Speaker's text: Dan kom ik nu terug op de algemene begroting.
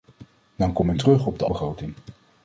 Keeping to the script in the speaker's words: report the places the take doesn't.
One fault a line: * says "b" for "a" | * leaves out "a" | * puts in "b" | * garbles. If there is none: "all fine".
* leaves out "nu"
* leaves out "algemene"